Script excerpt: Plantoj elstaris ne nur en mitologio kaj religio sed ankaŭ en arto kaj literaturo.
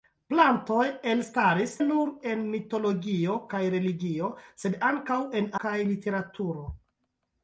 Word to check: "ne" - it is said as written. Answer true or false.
false